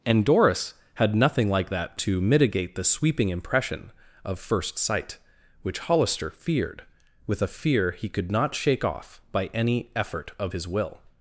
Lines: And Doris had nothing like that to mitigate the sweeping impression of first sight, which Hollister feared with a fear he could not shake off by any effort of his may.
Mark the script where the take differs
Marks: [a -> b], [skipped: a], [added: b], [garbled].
And Doris had nothing like that to mitigate the sweeping impression of first sight, which Hollister feared with a fear he could not shake off by any effort of his [may. -> will]